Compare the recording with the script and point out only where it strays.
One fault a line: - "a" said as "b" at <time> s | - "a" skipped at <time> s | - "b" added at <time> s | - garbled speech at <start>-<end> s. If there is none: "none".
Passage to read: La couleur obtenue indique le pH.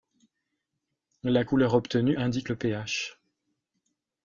none